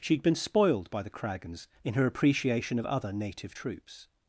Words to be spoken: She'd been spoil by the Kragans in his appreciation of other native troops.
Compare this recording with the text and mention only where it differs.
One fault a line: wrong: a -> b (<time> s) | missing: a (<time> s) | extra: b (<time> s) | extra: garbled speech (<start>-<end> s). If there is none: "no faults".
wrong: spoil -> spoiled (0.3 s)
wrong: his -> her (1.9 s)